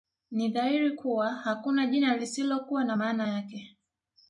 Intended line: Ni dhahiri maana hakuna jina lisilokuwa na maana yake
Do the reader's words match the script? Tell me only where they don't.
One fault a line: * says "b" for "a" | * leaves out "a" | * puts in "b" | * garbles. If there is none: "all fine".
* says "kuwa" for "maana"